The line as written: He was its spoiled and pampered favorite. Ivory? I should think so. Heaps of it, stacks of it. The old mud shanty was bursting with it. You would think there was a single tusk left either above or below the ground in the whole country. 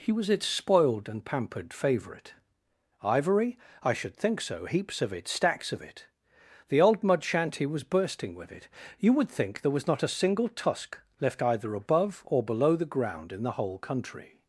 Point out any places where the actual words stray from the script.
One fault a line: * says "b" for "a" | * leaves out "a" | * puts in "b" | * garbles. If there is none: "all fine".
* puts in "not"